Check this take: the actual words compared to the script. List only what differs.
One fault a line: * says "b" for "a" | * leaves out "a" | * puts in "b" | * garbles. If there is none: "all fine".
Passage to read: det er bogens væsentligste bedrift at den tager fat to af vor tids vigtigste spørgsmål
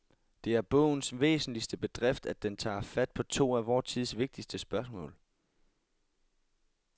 * puts in "på"